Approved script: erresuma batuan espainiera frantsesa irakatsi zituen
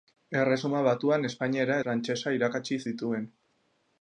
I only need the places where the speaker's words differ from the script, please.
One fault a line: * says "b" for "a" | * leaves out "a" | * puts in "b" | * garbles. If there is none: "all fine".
all fine